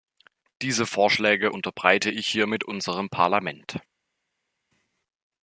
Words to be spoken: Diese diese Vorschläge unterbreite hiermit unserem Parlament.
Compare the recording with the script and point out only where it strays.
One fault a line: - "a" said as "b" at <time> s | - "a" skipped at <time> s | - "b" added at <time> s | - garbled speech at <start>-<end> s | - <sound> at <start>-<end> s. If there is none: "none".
- "diese" skipped at 0.9 s
- "ich" added at 2.1 s